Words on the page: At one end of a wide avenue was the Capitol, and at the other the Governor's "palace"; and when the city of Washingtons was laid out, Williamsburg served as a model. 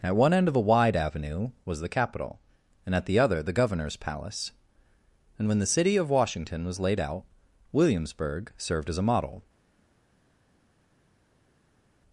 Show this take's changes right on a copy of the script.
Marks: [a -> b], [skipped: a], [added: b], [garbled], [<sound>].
At one end of a wide avenue was the Capitol, and at the other the Governor's "palace"; and when the city of [Washingtons -> Washington] was laid out, Williamsburg served as a model.